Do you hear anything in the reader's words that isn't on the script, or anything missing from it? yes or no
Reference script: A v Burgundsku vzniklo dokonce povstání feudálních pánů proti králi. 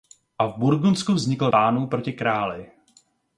yes